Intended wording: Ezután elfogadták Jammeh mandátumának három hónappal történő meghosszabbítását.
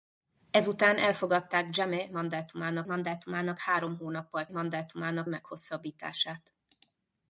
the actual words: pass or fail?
fail